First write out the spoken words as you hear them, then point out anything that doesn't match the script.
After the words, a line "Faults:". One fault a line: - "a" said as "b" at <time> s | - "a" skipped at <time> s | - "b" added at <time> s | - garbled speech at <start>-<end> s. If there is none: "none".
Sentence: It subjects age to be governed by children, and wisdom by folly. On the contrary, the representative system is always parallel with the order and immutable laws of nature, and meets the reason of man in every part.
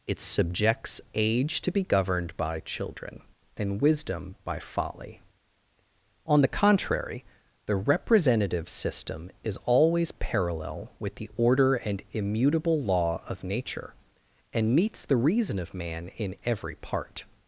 It subjects age to be governed by children, and wisdom by folly. On the contrary, the representative system is always parallel with the order and immutable law of nature, and meets the reason of man in every part.
Faults:
- "laws" said as "law" at 12.8 s